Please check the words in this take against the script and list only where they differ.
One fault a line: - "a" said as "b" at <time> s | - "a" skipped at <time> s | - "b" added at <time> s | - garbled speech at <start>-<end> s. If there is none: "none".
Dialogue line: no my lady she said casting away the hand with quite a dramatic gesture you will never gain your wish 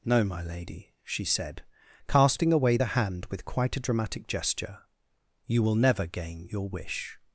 none